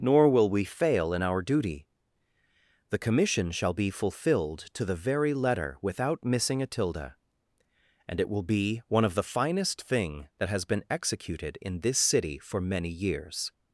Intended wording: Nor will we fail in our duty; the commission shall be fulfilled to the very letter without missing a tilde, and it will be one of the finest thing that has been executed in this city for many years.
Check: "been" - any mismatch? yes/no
no